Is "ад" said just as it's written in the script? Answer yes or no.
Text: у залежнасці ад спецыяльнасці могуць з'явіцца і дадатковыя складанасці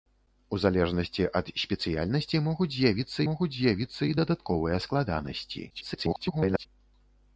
yes